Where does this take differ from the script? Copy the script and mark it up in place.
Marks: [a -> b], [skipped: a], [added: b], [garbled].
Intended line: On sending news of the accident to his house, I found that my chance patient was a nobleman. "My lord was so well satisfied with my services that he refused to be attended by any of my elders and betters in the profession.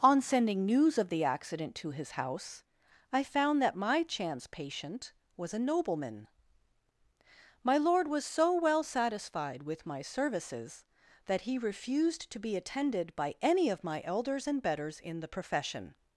On sending news of the accident to his house, I found that my chance patient was a nobleman. "My lord was so well satisfied with my services that he refused to be attended by any of my elders and betters in the profession.